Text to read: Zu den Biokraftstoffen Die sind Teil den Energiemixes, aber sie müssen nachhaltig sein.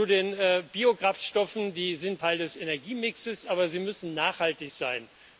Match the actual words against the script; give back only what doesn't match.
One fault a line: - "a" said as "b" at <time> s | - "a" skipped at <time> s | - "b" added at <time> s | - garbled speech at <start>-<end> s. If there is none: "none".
- "den" said as "des" at 2.4 s